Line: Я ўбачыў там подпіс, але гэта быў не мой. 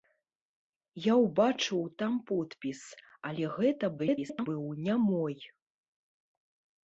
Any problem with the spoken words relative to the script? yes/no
yes